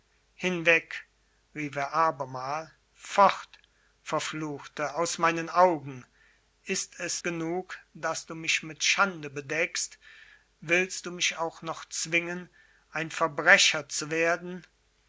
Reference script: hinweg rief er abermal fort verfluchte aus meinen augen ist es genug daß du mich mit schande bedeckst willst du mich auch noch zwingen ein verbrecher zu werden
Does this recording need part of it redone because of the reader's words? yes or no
no